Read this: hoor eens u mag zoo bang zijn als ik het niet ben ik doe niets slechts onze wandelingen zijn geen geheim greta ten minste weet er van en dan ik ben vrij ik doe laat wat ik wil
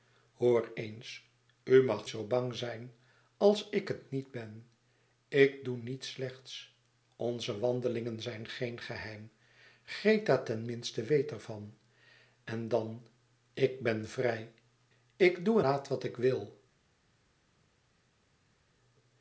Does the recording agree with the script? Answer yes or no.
yes